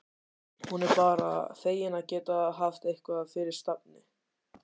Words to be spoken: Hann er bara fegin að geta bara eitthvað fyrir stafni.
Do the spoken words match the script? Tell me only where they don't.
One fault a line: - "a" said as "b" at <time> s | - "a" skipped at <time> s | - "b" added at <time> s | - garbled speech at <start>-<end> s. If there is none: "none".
- "Hann" said as "Hún" at 0.7 s
- "bara" said as "haft" at 2.6 s